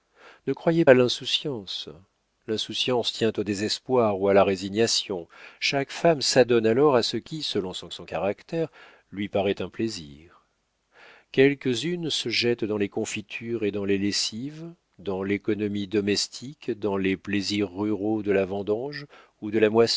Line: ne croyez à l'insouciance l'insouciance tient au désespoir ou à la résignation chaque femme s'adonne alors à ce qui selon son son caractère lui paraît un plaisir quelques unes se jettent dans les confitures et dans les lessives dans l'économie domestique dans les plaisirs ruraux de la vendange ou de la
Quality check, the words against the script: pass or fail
pass